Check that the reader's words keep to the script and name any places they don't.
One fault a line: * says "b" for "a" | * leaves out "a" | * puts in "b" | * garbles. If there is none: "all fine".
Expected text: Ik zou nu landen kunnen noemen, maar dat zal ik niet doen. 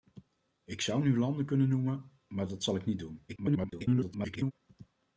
* garbles